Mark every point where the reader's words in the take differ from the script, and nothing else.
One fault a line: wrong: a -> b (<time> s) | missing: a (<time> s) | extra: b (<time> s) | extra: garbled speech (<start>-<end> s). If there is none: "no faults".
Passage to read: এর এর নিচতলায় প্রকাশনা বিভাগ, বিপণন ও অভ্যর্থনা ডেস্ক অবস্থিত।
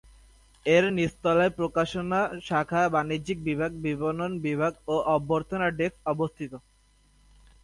missing: এর (0.8 s)
extra: শাখা বাণিজ্যিক (2.5 s)
extra: বিভাগ (4.5 s)